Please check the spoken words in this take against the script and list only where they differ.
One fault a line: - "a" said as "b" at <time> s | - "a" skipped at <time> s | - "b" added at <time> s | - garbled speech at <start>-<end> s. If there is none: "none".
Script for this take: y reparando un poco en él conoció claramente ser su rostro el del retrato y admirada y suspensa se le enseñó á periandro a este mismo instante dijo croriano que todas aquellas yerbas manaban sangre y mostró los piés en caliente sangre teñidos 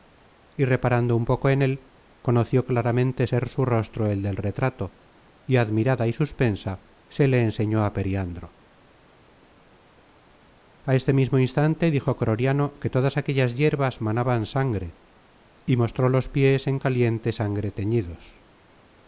none